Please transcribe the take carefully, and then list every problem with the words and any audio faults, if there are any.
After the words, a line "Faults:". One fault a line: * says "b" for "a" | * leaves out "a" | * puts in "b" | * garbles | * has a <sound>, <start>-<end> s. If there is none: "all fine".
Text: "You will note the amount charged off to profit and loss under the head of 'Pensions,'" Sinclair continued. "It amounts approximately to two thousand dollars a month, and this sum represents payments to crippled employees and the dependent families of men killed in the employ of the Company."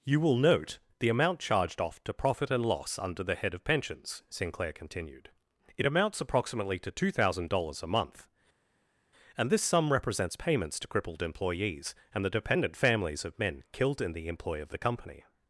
"You will note the amount charged off to profit and loss under the head of 'Pensions,'" Sinclair continued. "It amounts approximately to two thousand dollars a month, and this sum represents payments to crippled employees and the dependent families of men killed in the employ of the Company."
Faults:
all fine